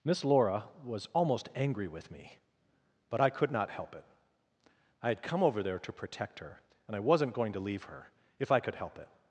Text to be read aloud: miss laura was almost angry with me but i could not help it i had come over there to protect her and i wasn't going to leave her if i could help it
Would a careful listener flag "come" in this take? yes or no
no